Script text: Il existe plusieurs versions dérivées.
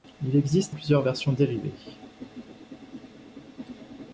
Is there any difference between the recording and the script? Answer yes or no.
no